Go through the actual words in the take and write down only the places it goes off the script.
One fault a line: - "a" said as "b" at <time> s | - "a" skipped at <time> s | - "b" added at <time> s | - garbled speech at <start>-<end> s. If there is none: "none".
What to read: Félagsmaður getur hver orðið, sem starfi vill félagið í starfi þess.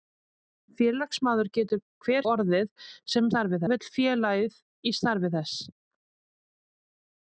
none